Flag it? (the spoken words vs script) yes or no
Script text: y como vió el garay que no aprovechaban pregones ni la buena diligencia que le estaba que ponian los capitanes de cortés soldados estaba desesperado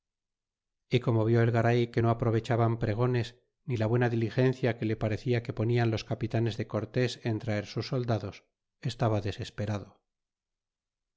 yes